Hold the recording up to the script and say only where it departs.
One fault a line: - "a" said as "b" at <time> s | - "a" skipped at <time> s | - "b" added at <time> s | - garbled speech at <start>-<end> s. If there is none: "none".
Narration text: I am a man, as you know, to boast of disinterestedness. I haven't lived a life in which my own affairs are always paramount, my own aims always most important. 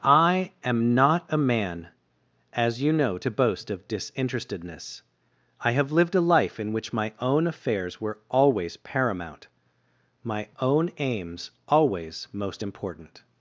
- "not" added at 0.9 s
- "haven't" said as "have" at 5.7 s
- "are" said as "were" at 8.0 s